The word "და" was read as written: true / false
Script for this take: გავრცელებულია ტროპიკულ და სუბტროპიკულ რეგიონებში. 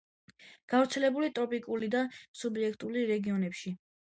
true